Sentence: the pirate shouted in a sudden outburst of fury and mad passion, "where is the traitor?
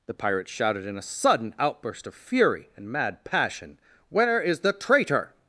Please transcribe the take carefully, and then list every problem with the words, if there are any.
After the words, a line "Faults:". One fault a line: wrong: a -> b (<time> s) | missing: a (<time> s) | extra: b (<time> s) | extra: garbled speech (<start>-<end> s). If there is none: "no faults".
the pirate shouted in a sudden outburst of fury and mad passion, "where is the traitor?
Faults:
no faults